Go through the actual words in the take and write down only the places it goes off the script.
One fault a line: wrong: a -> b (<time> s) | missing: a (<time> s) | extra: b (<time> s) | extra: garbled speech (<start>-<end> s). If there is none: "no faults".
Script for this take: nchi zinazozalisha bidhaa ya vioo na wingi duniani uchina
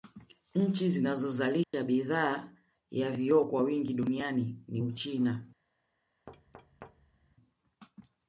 wrong: na -> kwa (3.5 s)
extra: ni (4.7 s)